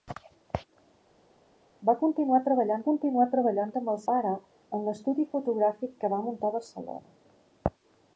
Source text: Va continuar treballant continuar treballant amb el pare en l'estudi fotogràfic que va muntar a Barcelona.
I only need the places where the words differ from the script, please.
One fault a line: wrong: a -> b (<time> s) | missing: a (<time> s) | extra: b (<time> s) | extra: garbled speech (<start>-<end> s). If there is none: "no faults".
no faults